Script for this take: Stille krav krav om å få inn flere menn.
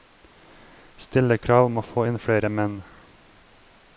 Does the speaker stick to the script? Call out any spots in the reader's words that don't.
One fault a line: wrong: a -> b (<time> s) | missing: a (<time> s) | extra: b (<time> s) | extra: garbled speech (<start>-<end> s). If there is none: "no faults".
missing: krav (1.7 s)